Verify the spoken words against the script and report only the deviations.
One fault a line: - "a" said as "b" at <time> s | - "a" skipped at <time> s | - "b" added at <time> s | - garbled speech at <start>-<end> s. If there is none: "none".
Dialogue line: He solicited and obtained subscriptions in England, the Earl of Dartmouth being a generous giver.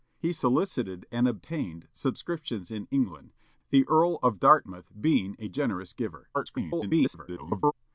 - garbled speech at 6.3-7.7 s